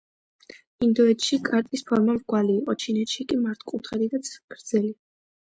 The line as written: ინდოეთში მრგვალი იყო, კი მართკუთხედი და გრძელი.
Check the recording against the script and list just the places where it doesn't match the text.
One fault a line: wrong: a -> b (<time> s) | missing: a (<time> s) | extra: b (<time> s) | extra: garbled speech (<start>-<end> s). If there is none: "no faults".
extra: კარტის ფორმა (1.5 s)
extra: ჩინეთში (2.9 s)